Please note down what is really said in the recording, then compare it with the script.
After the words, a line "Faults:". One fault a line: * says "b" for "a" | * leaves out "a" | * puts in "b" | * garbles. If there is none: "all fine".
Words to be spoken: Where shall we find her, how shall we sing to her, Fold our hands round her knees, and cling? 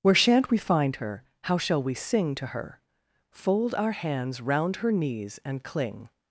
Where shan't we find her, how shall we sing to her, Fold our hands round her knees, and cling?
Faults:
* says "shan't" for "shall"